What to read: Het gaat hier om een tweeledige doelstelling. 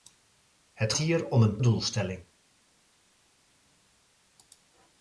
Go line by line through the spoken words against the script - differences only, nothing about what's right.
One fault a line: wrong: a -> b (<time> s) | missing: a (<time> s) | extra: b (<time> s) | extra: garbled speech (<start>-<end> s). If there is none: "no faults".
missing: gaat (0.9 s)
missing: tweeledige (1.6 s)